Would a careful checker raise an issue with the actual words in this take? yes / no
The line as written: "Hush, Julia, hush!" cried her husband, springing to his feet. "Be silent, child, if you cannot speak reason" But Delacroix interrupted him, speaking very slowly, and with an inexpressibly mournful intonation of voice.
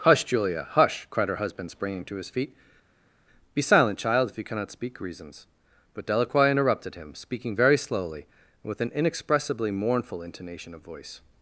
yes